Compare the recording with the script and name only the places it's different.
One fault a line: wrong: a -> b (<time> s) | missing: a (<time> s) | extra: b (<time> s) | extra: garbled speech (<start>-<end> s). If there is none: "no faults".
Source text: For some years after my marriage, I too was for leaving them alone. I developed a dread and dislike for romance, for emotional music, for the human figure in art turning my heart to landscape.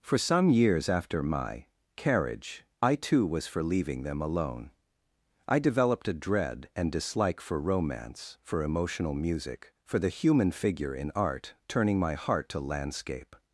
wrong: marriage -> carriage (1.9 s)